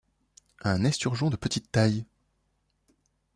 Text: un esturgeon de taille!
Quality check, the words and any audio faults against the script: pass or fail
fail